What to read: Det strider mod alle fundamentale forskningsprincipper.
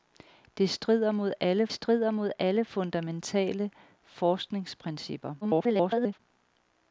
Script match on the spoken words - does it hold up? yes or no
no